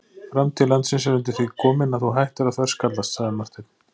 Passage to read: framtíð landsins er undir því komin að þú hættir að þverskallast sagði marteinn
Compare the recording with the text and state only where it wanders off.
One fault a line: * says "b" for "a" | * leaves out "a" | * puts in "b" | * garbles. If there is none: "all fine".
all fine